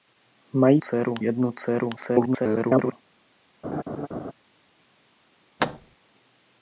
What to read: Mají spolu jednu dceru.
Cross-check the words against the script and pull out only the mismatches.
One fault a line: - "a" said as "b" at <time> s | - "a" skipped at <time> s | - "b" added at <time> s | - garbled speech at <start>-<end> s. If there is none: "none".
- "spolu" said as "dceru" at 0.8 s
- garbled speech at 2.0-2.9 s